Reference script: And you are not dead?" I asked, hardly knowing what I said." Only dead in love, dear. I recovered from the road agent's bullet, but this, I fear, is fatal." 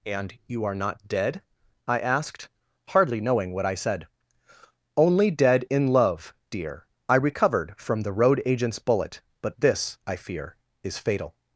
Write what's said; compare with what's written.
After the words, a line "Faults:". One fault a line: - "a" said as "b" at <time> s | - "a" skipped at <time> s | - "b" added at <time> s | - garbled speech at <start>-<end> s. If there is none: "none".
And you are not dead?" I asked, hardly knowing what I said." Only dead in love, dear. I recovered from the road agent's bullet, but this, I fear, is fatal."
Faults:
none